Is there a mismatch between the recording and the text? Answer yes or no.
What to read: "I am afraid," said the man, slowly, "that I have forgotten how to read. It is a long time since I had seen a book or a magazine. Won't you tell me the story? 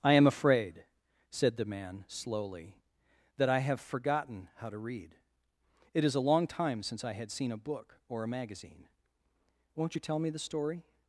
no